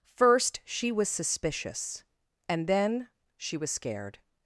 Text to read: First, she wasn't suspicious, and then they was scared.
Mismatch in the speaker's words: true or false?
true